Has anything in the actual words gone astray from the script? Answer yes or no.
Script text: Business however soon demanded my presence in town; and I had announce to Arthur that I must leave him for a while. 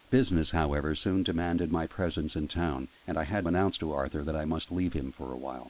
no